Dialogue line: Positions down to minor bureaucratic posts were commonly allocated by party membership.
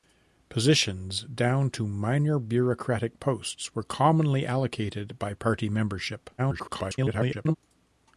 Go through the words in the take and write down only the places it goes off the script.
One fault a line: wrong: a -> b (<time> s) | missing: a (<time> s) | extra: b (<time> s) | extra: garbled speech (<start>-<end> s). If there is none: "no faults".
extra: garbled speech (6.4-7.6 s)